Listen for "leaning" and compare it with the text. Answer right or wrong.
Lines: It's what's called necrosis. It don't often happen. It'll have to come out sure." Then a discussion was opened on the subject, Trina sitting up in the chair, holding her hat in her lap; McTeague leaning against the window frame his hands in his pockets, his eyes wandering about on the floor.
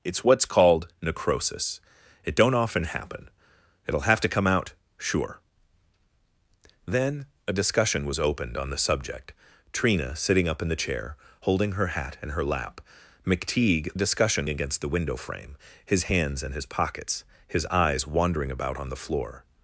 wrong